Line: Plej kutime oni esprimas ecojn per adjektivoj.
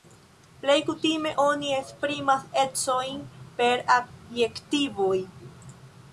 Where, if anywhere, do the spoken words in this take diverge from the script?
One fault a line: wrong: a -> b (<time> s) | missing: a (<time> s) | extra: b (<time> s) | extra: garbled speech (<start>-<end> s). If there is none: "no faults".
no faults